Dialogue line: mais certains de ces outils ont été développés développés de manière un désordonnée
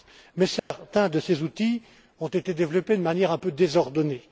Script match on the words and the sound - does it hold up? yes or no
no